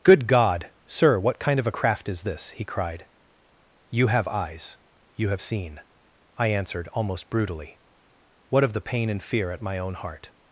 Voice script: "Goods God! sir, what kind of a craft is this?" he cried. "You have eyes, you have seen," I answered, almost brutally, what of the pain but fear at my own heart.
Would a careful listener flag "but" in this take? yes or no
yes